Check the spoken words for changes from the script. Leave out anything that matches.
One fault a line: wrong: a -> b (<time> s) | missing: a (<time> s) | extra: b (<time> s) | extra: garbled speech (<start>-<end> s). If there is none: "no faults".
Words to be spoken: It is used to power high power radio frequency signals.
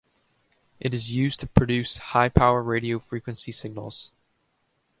wrong: power -> produce (1.5 s)